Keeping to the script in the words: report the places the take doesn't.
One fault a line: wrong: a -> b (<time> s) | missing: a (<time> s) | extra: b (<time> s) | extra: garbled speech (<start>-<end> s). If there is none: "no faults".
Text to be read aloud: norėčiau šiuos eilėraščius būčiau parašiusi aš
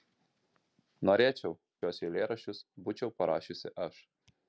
no faults